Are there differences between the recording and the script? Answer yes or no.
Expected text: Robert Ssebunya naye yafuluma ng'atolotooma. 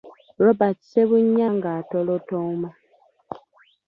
yes